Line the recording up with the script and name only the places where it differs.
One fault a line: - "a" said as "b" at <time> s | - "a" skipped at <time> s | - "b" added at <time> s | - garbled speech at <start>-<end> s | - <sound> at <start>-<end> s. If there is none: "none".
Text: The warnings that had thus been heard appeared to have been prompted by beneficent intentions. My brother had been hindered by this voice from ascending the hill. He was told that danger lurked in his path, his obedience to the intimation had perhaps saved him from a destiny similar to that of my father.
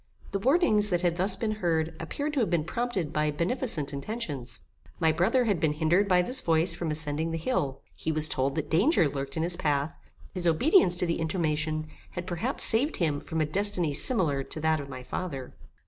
none